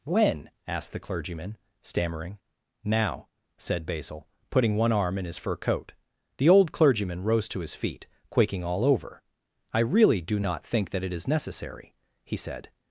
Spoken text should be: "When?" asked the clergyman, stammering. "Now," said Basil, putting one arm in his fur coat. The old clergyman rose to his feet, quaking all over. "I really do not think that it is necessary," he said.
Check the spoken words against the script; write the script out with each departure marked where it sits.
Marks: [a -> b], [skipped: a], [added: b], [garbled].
"When?" asked the clergyman, stammering. "Now," said Basil, putting one arm in his fur coat. The old clergyman rose to his feet, quaking all over. "I really do not think that it is necessary," he said.